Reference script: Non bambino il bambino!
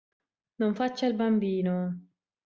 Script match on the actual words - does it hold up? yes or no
no